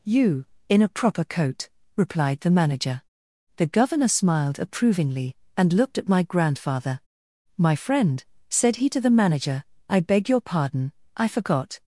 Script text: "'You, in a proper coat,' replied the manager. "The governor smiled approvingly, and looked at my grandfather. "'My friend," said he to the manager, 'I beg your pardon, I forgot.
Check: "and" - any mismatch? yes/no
no